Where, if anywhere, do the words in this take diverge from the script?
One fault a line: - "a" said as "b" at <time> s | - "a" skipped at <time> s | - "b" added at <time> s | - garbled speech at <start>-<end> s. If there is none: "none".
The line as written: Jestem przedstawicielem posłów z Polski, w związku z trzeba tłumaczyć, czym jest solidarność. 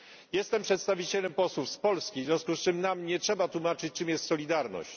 - "czym nam nie" added at 2.6 s